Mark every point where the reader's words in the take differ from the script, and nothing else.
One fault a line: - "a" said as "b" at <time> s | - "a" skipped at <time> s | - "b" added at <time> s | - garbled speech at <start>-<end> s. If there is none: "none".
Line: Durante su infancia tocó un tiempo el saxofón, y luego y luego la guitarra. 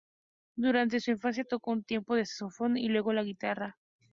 - "y luego" skipped at 3.1 s